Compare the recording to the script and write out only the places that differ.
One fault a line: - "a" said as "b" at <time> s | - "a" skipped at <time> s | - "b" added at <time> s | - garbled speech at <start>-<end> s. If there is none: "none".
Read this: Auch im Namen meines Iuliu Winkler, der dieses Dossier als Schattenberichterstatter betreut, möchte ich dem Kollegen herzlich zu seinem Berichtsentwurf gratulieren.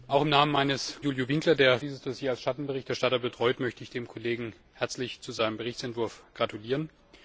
none